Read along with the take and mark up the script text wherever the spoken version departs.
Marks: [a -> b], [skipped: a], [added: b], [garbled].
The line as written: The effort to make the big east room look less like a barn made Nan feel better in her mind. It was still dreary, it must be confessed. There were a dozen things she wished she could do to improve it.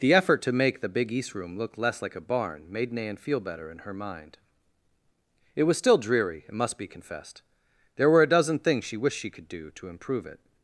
The effort to make the big east room look less like a barn made Nan feel better in her mind. It was still dreary, it must be confessed. There were a dozen things she wished she could do to improve it.